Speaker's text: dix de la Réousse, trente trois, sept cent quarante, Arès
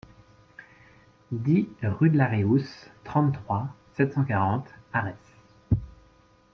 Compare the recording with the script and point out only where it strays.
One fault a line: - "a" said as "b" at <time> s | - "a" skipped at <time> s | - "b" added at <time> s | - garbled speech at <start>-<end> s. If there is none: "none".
- "rue" added at 1.8 s